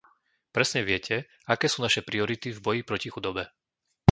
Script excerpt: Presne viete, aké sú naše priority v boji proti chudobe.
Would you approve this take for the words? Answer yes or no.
yes